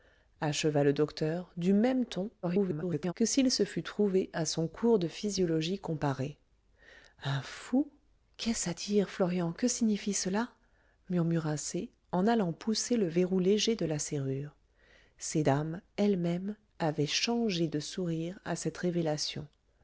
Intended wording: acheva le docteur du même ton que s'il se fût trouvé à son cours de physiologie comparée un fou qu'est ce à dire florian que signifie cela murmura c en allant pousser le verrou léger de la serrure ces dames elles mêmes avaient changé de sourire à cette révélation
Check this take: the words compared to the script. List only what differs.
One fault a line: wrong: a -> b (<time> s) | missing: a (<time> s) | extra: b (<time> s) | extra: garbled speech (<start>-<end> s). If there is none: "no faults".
extra: garbled speech (2.4-3.1 s)